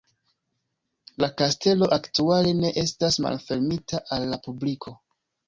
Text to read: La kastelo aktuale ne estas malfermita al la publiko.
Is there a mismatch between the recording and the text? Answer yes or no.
no